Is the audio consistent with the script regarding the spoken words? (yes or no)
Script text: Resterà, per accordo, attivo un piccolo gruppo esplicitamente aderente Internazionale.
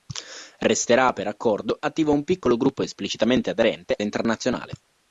yes